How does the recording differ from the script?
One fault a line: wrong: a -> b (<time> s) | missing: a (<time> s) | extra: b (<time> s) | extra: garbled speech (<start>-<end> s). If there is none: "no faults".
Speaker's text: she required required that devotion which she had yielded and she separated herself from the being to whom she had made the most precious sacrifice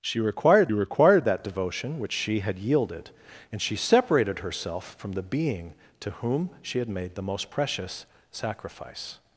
no faults